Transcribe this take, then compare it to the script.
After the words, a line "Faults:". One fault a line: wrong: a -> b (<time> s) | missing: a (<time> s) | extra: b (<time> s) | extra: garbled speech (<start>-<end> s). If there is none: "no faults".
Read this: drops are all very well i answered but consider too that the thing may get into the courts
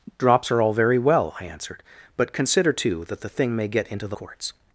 drops are all very well i answered but consider too that the thing may get into the courts
Faults:
no faults